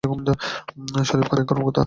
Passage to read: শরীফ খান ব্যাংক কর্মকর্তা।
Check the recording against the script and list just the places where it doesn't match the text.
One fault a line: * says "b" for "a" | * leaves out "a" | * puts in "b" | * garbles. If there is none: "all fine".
all fine